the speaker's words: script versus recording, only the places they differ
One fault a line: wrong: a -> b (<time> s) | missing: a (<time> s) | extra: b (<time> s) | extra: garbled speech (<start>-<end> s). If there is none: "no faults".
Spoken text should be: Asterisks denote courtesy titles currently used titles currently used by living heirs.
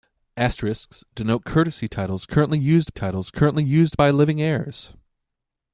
no faults